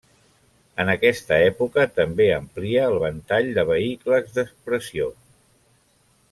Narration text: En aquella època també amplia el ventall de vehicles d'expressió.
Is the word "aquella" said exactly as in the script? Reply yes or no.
no